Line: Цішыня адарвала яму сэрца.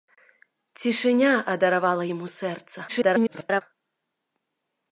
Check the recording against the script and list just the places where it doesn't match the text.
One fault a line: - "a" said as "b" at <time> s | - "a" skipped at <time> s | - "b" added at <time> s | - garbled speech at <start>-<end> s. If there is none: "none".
- garbled speech at 2.9-3.6 s